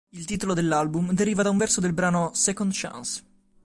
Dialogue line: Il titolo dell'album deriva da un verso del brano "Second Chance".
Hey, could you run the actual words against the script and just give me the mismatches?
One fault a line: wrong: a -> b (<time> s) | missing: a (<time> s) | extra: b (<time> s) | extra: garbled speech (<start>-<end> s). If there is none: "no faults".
no faults